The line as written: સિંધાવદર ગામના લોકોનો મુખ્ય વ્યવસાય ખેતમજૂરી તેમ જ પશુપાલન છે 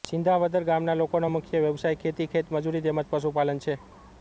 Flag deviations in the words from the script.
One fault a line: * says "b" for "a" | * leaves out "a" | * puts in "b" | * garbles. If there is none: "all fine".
* puts in "ખેતી"